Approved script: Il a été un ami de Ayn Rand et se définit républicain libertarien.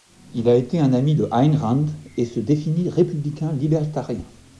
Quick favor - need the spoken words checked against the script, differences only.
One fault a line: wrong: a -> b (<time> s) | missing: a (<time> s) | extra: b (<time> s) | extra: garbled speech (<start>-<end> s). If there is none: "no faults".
no faults